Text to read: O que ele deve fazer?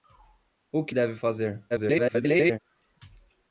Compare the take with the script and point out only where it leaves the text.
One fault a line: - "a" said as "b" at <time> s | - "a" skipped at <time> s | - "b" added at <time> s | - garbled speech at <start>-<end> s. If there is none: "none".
- "ele" skipped at 0.9 s
- garbled speech at 1.7-2.6 s